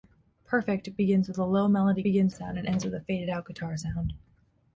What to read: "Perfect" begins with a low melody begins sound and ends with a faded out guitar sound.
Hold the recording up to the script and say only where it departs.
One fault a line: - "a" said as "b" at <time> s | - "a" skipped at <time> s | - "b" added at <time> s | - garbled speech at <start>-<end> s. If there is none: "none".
none